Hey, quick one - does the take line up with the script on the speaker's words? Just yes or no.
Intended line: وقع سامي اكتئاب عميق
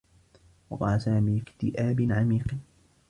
yes